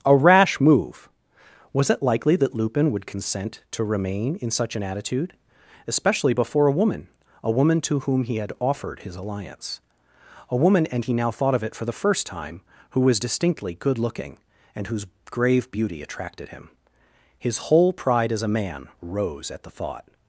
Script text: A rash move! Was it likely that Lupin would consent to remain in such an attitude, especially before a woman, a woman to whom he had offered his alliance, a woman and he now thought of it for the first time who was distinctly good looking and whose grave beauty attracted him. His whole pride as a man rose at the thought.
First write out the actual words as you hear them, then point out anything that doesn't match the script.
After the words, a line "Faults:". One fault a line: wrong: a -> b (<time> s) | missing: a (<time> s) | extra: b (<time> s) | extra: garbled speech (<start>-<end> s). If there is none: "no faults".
A rash move! Was it likely that Lupin would consent to remain in such an attitude, especially before a woman, a woman to whom he had offered his alliance, a woman and he now thought of it for the first time who was distinctly good looking and whose grave beauty attracted him. His whole pride as a man rose at the thought.
Faults:
no faults